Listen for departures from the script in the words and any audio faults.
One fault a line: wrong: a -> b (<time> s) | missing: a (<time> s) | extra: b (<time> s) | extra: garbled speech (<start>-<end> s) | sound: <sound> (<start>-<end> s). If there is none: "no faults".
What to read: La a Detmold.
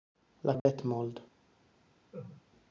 sound: dropout (0.6-0.7 s)
sound: laugh (2.1-2.4 s)